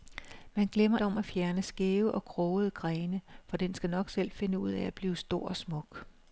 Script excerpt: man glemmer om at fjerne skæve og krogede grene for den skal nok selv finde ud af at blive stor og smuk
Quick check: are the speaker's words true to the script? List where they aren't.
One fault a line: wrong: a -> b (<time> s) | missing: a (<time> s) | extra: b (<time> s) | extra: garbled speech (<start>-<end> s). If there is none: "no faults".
no faults